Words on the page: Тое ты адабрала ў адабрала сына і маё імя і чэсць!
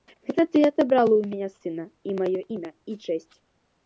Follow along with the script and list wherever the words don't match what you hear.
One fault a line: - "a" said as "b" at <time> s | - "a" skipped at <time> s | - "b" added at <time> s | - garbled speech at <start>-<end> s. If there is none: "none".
- "Тое" said as "Гэта" at 0.3 s
- "адабрала" said as "мяне" at 1.3 s